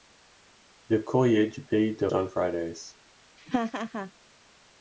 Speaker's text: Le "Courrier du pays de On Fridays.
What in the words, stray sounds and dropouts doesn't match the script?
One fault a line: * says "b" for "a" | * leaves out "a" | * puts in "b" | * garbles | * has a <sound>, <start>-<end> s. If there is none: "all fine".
* has a laugh, 3.4-4.1 s